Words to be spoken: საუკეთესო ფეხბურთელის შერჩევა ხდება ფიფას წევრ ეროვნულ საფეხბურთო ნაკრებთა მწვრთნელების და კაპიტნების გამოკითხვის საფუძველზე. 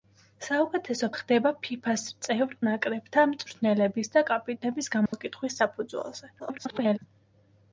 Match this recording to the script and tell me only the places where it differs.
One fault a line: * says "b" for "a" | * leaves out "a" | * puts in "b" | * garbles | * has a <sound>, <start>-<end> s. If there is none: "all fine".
* leaves out "ფეხბურთელის შერჩევა"
* leaves out "ეროვნულ საფეხბურთო"
* has a dropout, 5.1-5.1 s
* garbles